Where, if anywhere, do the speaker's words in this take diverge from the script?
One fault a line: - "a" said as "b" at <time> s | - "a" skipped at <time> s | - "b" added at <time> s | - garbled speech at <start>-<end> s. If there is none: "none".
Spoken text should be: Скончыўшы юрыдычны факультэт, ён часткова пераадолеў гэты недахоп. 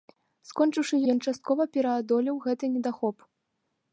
- "юрыдычны факультэт" skipped at 0.9 s